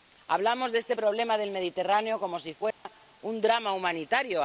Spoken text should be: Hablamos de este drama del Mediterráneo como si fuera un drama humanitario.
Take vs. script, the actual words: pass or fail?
fail